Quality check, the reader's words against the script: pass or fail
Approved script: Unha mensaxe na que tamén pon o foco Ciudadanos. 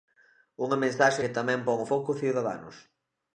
fail